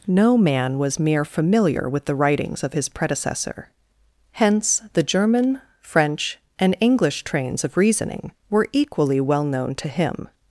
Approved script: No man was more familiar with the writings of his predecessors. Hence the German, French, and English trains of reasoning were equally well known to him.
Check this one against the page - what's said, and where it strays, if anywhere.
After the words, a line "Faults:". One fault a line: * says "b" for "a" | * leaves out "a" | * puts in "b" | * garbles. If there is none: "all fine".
No man was mere familiar with the writings of his predecessor. Hence the German, French, and English trains of reasoning were equally well known to him.
Faults:
* says "mere" for "more"
* says "predecessor" for "predecessors"